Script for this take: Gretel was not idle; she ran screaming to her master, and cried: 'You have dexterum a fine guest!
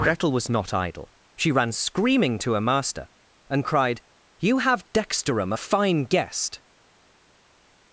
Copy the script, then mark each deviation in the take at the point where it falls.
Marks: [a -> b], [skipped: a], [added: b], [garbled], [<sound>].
Gretel was not idle; she ran screaming to her master, and cried: 'You have dexterum a fine guest!